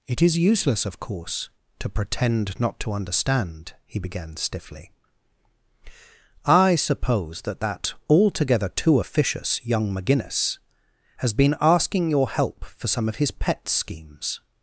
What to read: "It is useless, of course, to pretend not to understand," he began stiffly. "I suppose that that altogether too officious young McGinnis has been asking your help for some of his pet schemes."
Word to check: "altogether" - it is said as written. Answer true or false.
true